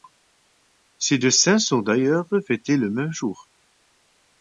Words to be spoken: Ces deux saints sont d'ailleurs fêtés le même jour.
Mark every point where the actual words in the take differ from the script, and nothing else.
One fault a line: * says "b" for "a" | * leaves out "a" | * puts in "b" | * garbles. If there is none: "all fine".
all fine